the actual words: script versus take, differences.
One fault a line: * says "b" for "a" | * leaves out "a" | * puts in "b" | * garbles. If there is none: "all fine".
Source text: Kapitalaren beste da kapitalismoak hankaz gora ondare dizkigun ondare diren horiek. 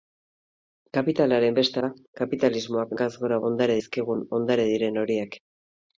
all fine